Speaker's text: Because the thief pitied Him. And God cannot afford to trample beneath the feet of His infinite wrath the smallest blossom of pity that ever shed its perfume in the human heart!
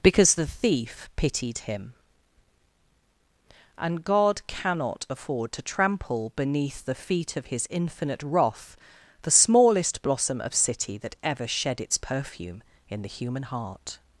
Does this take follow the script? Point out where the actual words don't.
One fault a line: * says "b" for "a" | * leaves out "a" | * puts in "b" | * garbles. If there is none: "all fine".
* says "city" for "pity"